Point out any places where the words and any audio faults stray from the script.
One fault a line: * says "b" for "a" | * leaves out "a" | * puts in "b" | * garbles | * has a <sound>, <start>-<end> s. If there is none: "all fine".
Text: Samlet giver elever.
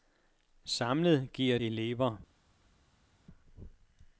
all fine